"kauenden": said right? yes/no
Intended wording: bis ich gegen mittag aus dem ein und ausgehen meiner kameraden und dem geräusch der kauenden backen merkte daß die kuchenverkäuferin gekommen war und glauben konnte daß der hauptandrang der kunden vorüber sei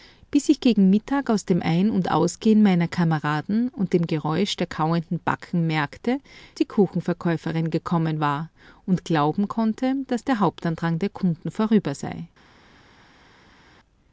yes